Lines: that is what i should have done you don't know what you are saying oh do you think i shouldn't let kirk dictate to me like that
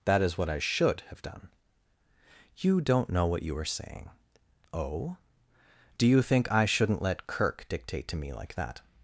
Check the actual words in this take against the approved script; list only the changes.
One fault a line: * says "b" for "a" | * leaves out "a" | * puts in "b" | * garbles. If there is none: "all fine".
all fine